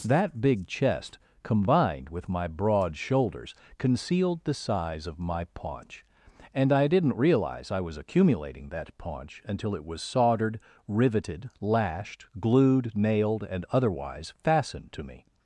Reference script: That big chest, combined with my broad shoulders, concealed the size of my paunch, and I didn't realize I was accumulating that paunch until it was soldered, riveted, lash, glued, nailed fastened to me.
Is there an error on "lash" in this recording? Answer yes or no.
yes